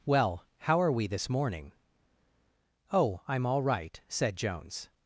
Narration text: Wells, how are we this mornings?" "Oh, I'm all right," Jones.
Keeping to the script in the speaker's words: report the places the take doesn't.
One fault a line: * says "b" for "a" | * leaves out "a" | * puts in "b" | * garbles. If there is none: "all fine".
* says "Well" for "Wells"
* says "morning" for "mornings"
* puts in "said"